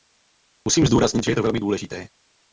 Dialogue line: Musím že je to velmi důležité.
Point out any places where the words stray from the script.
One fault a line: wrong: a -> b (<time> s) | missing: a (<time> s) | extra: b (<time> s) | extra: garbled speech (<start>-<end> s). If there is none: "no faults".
extra: zdůraznit (0.8 s)